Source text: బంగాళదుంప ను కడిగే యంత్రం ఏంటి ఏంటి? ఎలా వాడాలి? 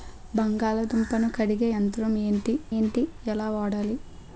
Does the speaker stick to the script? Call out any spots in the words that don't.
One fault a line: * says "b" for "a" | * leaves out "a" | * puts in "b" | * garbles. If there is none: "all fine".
all fine